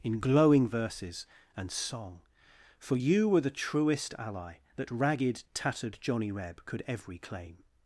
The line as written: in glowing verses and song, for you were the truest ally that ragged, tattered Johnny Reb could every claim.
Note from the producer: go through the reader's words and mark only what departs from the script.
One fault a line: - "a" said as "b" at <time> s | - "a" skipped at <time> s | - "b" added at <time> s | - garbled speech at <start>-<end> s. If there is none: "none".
none